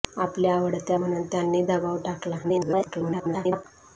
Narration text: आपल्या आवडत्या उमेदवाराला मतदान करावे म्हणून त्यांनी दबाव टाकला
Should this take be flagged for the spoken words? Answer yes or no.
yes